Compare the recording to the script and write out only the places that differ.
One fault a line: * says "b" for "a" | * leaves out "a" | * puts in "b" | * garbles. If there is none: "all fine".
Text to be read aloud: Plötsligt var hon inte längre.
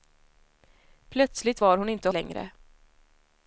all fine